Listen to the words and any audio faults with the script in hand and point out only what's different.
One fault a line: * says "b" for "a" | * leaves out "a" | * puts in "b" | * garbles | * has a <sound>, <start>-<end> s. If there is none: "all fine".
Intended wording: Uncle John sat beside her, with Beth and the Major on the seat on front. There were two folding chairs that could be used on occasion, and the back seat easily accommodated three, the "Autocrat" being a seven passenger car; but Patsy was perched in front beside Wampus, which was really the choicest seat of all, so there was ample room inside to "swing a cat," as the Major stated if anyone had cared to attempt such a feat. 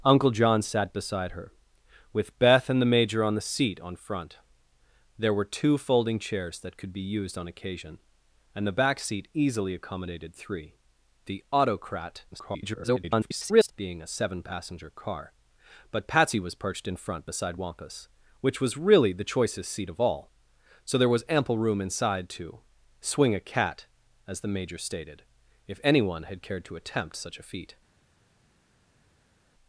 * garbles